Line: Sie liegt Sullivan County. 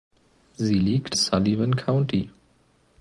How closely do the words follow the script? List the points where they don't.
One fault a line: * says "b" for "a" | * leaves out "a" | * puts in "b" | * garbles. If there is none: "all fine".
all fine